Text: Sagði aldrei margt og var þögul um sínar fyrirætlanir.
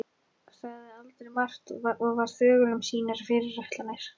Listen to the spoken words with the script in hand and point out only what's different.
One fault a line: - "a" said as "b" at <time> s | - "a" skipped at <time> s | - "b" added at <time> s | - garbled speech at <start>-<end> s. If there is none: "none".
none